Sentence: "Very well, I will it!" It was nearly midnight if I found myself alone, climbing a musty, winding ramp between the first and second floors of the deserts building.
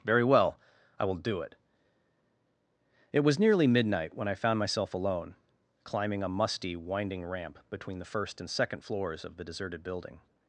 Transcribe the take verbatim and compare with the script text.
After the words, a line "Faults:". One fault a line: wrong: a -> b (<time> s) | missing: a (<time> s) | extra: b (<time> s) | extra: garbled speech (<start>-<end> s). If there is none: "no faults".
"Very well, I will do it!" It was nearly midnight when I found myself alone, climbing a musty, winding ramp between the first and second floors of the deserted building.
Faults:
extra: do (1.1 s)
wrong: if -> when (4.1 s)
wrong: deserts -> deserted (9.4 s)